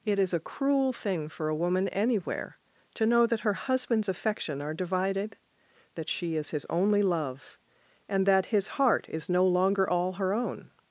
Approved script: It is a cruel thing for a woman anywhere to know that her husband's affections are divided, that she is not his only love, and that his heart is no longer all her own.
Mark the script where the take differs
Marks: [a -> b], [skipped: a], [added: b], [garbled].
It is a cruel thing for a woman anywhere to know that her husband's [affections -> affection] are divided, that she is [skipped: not] his only love, and that his heart is no longer all her own.